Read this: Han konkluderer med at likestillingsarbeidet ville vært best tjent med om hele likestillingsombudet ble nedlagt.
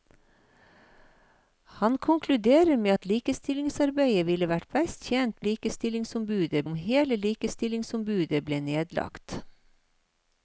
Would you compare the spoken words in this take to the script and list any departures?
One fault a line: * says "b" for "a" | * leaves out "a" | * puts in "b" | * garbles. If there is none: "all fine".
* says "likestillingsombudet" for "med"